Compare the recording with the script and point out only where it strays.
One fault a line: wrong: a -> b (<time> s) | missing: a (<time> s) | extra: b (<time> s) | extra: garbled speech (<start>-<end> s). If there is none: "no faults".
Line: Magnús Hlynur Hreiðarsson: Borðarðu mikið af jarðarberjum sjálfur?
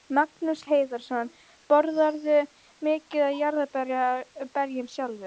missing: Hlynur (0.6 s)